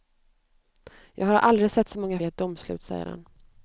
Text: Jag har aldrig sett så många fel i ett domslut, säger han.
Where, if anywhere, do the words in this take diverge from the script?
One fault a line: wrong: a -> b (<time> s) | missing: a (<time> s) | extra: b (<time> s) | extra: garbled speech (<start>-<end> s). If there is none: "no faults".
missing: fel (2.2 s)